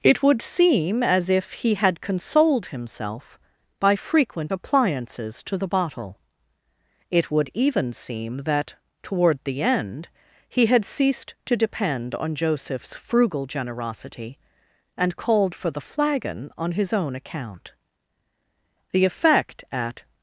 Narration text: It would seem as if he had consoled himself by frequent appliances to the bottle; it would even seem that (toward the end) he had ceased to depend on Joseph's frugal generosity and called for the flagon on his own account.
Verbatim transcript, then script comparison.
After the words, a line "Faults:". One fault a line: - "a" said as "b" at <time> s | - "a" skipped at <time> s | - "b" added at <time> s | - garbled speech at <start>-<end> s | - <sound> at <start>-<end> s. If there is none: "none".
It would seem as if he had consoled himself by frequent appliances to the bottle; it would even seem that (toward the end) he had ceased to depend on Joseph's frugal generosity and called for the flagon on his own account. The effect, at
Faults:
- "The effect at" added at 18.9 s